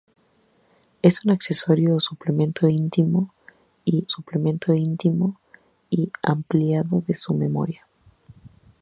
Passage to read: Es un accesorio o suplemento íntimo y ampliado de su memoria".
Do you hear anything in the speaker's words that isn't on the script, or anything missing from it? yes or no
yes